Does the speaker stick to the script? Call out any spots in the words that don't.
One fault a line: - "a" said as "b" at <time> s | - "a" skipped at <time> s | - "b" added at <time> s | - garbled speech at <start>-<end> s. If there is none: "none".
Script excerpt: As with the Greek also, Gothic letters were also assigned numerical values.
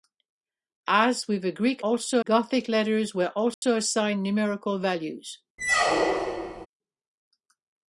none